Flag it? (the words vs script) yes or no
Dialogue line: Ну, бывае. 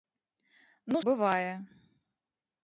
no